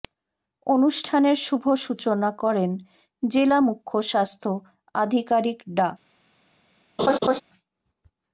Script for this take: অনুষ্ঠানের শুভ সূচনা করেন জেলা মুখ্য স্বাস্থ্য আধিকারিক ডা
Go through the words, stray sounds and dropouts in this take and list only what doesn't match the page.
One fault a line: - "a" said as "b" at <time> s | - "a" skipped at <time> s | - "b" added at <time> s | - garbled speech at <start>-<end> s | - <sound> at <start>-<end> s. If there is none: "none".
- laugh at 7.0-7.4 s